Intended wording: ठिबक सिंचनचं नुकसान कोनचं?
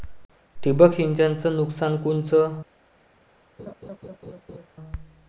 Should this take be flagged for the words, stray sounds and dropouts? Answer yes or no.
yes